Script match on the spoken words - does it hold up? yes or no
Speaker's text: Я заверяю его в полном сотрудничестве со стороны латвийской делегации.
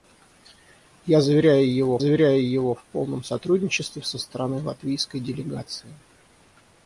no